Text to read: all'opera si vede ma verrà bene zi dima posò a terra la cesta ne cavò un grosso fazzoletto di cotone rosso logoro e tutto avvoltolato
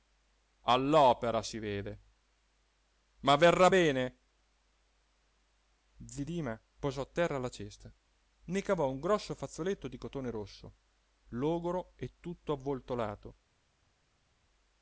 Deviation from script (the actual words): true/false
false